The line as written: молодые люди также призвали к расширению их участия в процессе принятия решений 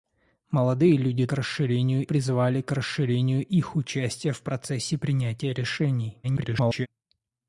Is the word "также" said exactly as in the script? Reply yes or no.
no